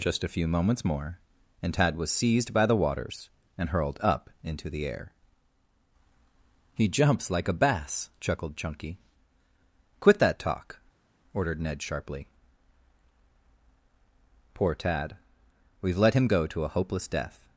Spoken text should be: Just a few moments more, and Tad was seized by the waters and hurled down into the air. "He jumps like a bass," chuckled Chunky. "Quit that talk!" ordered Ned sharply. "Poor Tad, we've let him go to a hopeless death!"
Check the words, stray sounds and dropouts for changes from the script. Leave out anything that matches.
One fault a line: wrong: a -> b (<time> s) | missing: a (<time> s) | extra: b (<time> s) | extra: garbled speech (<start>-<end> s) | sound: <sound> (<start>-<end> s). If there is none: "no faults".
wrong: down -> up (4.0 s)